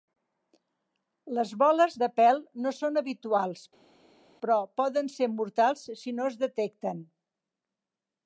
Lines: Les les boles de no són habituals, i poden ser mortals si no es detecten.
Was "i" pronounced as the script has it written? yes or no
no